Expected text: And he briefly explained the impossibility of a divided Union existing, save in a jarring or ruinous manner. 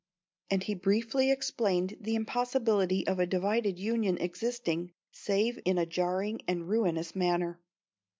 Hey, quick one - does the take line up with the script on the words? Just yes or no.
no